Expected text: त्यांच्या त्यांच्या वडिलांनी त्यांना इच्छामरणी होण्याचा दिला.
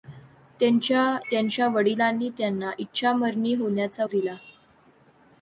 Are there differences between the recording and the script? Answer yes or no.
no